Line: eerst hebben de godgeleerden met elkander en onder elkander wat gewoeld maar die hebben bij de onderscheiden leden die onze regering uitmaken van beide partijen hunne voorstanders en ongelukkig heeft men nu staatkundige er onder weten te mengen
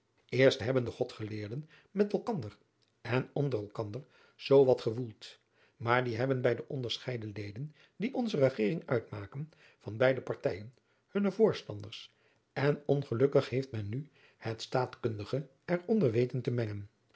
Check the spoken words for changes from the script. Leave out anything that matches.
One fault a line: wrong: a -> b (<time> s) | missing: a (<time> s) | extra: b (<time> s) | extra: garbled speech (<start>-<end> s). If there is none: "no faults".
extra: zoo (4.3 s)
extra: het (14.4 s)